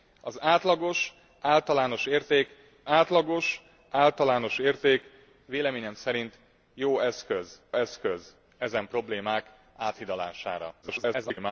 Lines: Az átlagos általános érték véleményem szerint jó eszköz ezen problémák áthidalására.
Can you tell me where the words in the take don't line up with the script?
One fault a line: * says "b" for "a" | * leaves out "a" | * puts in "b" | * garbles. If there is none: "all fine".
* puts in "átlagos általános érték"
* puts in "eszköz"
* garbles